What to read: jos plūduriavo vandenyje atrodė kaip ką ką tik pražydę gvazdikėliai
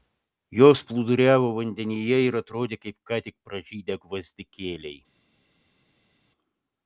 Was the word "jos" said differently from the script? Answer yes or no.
no